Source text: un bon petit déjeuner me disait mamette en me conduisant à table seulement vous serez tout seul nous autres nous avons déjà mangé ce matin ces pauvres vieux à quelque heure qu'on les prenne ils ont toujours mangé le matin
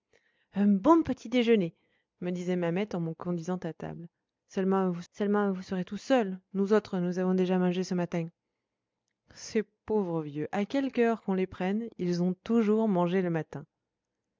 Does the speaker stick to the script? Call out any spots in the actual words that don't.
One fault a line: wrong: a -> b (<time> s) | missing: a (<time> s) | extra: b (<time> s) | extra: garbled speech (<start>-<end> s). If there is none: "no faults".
extra: seulement vous (5.1 s)